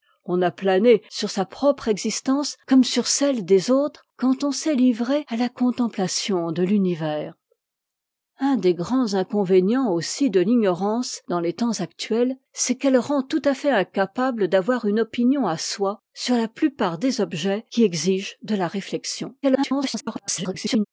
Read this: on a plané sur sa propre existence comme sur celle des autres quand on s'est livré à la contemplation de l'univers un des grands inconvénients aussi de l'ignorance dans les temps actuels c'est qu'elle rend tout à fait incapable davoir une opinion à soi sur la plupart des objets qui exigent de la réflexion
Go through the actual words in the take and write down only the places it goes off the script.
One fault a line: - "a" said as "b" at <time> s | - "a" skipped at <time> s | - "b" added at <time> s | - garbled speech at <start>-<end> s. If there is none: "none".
- garbled speech at 19.4-20.9 s